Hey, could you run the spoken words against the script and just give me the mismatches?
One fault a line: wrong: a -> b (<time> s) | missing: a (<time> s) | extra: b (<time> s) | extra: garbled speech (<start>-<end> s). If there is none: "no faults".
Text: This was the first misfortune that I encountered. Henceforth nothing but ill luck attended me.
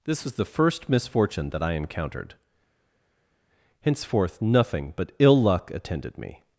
no faults